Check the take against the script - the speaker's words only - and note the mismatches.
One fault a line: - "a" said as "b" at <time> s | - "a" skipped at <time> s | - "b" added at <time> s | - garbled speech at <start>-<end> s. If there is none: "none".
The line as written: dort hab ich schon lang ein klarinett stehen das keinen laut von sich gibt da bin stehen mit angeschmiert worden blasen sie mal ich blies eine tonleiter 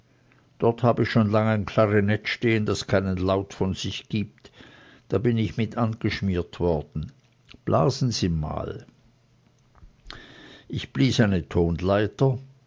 - "stehen" said as "ich" at 5.4 s